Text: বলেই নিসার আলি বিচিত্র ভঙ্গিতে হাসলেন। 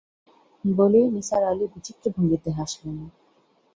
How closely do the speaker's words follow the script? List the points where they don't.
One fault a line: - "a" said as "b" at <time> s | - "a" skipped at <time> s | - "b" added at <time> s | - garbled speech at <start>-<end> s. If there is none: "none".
none